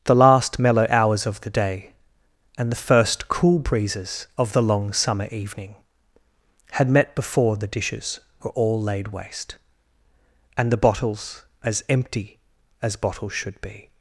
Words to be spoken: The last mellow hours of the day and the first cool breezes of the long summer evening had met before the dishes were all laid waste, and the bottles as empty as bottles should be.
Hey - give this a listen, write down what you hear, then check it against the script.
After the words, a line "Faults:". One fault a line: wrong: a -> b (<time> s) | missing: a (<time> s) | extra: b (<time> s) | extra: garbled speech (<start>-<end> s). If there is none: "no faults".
The last mellow hours of the day and the first cool breezes of the long summer evening had met before the dishes were all laid waste, and the bottles as empty as bottles should be.
Faults:
no faults